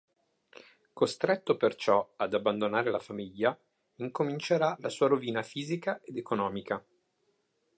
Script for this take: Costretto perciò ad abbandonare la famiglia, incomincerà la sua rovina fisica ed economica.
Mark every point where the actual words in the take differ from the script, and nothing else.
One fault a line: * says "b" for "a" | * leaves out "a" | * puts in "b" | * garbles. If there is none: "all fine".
all fine